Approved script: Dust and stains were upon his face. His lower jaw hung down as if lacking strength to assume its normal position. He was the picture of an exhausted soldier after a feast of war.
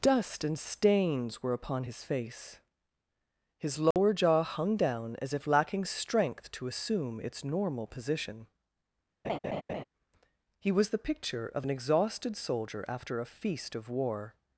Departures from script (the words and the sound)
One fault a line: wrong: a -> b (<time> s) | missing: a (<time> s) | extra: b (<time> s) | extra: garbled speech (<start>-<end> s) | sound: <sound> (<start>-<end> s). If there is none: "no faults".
sound: dropout (3.9-4.0 s)
sound: laugh (9.2-9.8 s)